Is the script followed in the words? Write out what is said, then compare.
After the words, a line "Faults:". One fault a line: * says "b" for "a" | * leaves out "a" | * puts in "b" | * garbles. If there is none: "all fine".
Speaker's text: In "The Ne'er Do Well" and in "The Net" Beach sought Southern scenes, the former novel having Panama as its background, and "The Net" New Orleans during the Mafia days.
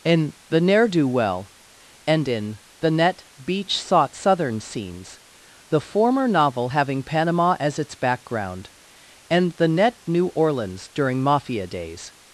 In "The Ne'er Do Well" and in "The Net" Beach sought Southern scenes, the former novel having Panama as its background, and "The Net" New Orleans during Mafia days.
Faults:
* leaves out "the"